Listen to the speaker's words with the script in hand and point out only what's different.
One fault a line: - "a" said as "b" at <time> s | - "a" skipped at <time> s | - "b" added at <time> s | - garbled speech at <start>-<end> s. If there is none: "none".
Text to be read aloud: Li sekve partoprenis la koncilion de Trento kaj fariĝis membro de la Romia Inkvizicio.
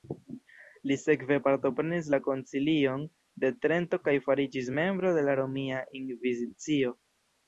none